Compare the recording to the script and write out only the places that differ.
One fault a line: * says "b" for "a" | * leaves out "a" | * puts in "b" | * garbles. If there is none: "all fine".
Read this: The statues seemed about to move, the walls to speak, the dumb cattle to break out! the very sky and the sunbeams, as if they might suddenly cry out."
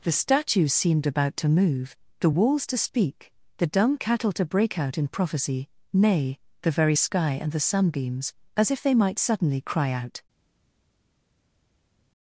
* puts in "in prophecy nay"